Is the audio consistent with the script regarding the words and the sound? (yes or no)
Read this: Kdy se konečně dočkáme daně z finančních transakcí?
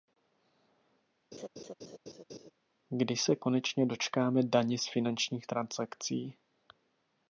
no